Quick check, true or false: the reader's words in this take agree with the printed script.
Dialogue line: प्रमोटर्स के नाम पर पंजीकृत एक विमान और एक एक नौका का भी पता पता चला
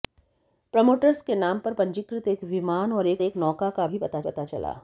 true